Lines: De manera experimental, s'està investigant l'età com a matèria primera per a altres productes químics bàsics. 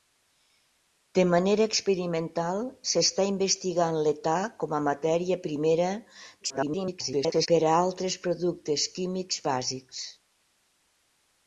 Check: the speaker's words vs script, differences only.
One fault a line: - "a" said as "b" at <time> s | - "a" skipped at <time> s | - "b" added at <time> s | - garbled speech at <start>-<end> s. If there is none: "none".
- garbled speech at 6.4-7.5 s